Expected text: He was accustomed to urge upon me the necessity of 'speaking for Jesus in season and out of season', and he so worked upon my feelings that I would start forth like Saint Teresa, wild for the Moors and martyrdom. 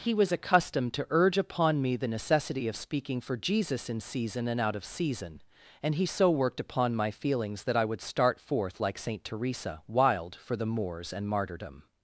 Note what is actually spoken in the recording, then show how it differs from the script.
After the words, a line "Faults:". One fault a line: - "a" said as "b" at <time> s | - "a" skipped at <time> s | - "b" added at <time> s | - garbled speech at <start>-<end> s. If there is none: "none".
He was accustomed to urge upon me the necessity of 'speaking for Jesus in season and out of season', and he so worked upon my feelings that I would start forth like Saint Teresa, wild for the Moors and martyrdom.
Faults:
none